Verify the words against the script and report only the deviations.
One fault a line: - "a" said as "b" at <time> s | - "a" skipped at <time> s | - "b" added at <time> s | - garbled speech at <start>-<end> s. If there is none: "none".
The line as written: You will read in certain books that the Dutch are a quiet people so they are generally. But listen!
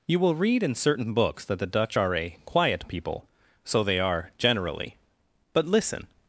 none